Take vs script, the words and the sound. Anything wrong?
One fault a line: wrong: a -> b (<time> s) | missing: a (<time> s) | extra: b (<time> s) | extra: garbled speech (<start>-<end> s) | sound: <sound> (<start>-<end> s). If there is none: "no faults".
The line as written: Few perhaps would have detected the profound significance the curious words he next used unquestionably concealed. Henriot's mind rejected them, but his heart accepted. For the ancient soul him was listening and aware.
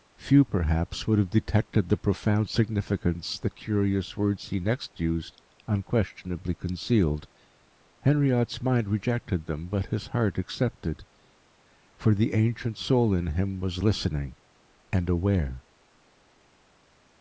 extra: in (13.1 s)